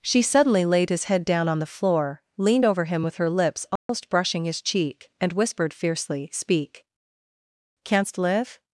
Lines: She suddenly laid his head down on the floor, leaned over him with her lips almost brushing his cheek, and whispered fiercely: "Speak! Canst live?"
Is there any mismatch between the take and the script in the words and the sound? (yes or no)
yes